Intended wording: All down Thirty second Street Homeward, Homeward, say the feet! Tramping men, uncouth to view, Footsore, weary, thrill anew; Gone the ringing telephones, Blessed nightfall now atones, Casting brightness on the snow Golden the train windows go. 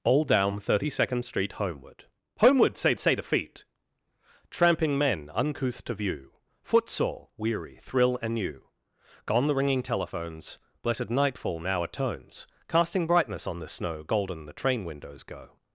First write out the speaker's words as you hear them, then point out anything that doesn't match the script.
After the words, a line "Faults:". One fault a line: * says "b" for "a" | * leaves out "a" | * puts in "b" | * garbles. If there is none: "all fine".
All down Thirty second Street Homeward, Homeward, say say the feet! Tramping men, uncouth to view, Footsore, weary, thrill anew; Gone the ringing telephones, Blessed nightfall now atones, Casting brightness on the snow Golden the train windows go.
Faults:
* puts in "say"